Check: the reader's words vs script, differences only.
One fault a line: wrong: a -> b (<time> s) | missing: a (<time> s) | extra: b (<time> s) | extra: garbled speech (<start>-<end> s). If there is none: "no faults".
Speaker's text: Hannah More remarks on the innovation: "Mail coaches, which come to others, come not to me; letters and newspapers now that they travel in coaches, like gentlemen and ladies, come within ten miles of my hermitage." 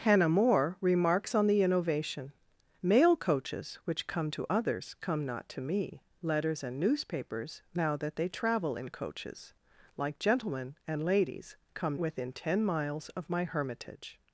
no faults